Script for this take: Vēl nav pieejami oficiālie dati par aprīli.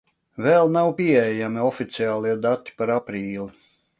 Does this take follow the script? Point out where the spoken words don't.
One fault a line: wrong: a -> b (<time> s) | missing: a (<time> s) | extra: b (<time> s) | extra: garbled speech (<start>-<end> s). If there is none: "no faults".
no faults